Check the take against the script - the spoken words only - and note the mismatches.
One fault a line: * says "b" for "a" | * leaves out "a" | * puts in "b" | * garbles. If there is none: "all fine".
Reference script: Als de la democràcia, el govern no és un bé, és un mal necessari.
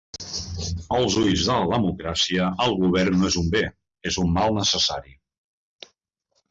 * puts in "ulls"